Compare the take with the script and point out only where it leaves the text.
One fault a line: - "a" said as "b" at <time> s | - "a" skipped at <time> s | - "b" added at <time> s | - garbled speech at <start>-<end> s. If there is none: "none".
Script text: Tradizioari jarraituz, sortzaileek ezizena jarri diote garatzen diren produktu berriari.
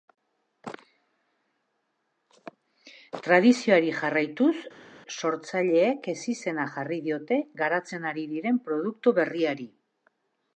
- "ari" added at 8.2 s